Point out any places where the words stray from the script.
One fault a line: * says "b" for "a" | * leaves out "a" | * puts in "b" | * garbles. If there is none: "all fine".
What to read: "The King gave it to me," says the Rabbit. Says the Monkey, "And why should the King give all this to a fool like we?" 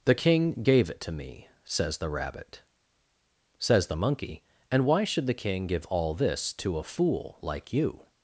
* says "you" for "we"